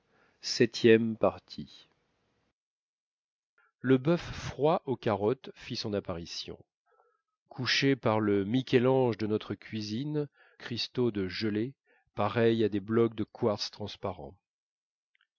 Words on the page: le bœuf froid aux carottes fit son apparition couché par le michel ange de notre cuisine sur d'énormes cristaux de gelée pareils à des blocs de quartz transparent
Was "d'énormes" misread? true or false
true